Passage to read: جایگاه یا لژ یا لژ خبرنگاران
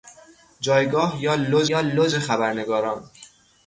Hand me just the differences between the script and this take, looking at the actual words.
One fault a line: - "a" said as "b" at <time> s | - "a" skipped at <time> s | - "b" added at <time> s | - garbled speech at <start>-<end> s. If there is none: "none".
none